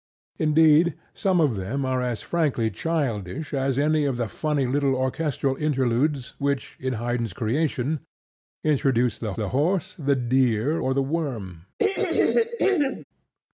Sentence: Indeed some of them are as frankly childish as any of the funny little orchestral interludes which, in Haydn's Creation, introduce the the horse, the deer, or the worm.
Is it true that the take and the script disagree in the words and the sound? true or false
true